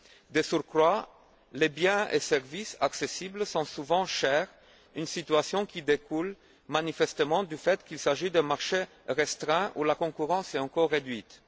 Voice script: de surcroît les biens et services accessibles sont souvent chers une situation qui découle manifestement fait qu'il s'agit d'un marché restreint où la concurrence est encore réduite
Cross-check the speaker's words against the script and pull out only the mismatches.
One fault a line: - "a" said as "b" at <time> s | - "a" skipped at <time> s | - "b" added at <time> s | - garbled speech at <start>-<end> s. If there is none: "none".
- "du" added at 7.4 s